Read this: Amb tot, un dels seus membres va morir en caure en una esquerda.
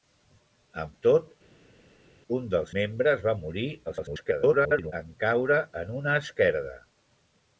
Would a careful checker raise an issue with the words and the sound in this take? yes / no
yes